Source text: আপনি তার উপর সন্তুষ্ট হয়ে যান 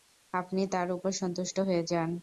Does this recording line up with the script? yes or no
yes